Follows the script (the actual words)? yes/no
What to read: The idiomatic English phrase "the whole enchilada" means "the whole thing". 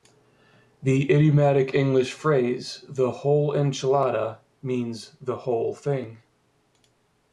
yes